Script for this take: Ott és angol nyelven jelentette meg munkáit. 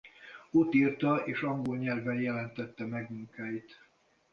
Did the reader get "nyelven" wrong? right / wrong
right